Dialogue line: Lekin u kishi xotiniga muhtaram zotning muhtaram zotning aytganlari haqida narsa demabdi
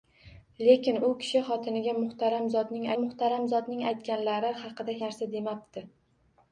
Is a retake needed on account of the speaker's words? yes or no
no